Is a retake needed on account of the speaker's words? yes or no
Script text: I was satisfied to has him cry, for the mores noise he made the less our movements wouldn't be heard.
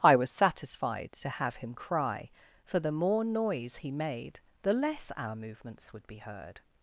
yes